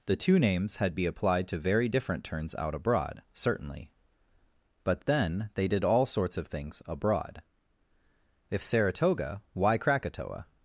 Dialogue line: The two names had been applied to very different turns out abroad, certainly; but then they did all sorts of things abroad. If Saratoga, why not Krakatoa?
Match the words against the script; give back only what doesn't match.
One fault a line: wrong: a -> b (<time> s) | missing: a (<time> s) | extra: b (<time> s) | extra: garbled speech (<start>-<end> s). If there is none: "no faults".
wrong: been -> be (0.9 s)
missing: not (9.8 s)